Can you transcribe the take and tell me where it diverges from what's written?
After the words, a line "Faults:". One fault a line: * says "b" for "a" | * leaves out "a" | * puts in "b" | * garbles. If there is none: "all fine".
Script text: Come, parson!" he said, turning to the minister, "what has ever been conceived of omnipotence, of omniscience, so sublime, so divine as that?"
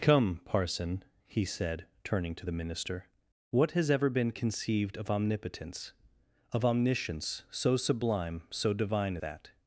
Come, parson!" he said, turning to the minister, "what has ever been conceived of omnipotence, of omniscience, so sublime, so divine that?"
Faults:
* leaves out "as"